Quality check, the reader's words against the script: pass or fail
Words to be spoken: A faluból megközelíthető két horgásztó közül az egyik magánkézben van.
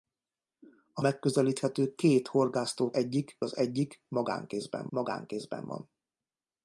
fail